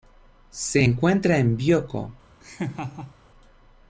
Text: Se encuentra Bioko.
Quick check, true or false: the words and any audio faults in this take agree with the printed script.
false